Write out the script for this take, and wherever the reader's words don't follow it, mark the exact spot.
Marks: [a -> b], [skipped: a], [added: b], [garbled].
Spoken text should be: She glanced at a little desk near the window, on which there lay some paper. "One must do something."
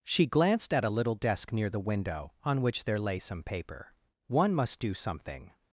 She glanced at a little desk near the window, on which there lay some paper. "One must do something."